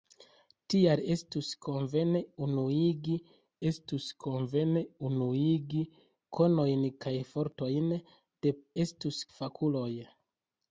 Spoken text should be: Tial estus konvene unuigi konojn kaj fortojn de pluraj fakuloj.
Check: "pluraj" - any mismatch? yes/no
yes